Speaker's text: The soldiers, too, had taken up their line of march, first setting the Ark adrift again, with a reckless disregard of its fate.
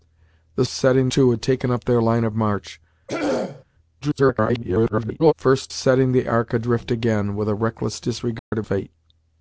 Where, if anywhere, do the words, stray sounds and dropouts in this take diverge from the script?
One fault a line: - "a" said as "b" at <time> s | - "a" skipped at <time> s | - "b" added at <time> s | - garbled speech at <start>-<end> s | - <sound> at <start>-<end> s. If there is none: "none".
- "soldiers" said as "setting" at 0.7 s
- throat clearing at 3.1-3.6 s
- garbled speech at 4.0-5.3 s
- dropout at 8.4-8.5 s
- "its" skipped at 8.7 s